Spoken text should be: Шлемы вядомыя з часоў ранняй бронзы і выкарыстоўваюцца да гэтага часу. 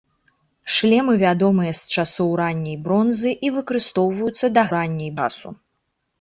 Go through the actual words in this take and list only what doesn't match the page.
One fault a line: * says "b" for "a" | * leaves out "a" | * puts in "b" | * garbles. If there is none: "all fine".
* says "ранняй" for "гэтага"